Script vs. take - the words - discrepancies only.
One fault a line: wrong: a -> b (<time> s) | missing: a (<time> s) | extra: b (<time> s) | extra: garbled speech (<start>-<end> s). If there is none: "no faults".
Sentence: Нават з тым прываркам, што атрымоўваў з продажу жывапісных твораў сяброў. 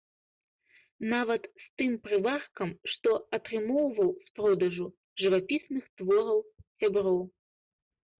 no faults